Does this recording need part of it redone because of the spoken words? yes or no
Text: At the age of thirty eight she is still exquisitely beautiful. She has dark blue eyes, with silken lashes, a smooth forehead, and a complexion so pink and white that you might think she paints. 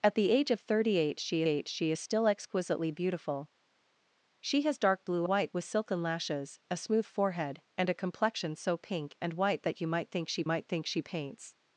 yes